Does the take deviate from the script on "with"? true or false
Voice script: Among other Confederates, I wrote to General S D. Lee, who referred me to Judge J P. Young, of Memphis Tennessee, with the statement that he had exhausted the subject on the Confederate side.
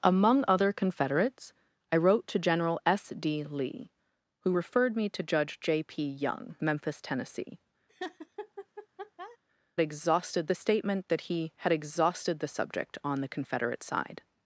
true